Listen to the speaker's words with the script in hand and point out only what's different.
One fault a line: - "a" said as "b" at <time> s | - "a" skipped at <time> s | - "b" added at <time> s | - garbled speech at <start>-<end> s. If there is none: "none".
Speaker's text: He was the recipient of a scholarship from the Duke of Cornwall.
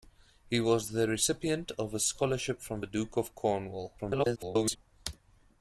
- garbled speech at 4.0-4.8 s